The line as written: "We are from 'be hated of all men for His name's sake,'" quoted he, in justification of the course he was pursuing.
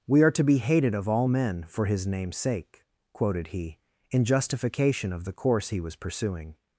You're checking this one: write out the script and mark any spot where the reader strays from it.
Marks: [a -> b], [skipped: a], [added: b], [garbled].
"We are [from -> to] 'be hated of all men for His name's sake,'" quoted he, in justification of the course he was pursuing.